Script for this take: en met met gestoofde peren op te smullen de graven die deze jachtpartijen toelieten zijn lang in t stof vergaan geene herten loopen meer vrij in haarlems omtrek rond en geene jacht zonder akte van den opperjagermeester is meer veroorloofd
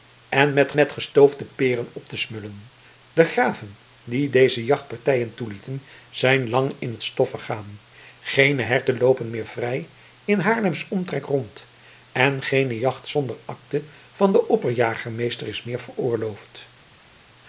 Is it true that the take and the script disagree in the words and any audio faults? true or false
false